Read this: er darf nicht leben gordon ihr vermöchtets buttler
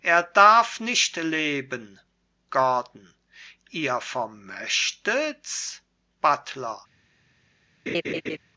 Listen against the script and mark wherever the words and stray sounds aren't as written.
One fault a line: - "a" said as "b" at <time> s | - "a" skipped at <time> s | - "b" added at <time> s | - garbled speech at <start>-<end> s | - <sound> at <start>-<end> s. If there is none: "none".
- laugh at 7.9-8.4 s